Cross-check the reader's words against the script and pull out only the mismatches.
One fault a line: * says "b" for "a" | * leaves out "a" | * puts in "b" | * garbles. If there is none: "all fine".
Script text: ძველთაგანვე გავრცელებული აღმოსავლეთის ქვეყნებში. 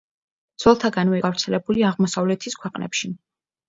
all fine